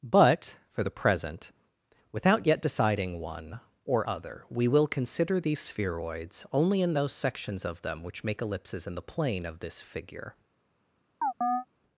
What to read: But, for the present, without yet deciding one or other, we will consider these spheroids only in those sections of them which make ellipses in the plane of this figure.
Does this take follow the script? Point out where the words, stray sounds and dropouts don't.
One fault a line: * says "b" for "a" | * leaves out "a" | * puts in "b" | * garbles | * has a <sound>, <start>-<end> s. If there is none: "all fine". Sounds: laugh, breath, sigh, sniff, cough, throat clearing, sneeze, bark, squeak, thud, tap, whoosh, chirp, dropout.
* has a chirp, 11.2-11.7 s